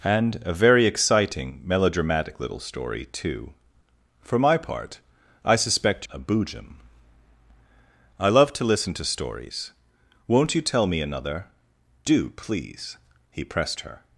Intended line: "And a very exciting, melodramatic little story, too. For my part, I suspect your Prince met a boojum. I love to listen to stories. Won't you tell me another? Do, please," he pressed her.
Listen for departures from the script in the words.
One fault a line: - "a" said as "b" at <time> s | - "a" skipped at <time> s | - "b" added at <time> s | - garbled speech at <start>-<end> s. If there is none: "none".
- "your Prince met" skipped at 6.0 s